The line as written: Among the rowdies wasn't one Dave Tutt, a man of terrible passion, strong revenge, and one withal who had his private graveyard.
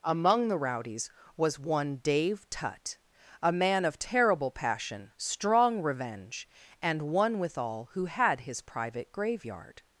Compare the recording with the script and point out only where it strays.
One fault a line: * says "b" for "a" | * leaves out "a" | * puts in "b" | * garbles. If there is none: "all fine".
* says "was" for "wasn't"